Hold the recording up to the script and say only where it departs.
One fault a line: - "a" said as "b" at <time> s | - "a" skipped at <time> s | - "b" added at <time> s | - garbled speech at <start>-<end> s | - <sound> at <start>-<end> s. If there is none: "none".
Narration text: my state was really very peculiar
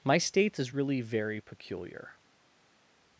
- "was" said as "is" at 0.6 s